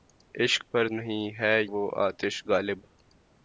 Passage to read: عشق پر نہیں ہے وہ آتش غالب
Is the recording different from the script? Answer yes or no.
no